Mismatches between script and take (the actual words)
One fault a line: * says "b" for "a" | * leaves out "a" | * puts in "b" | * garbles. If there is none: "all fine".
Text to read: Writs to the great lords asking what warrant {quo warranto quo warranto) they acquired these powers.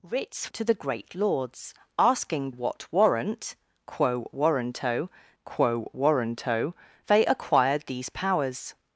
all fine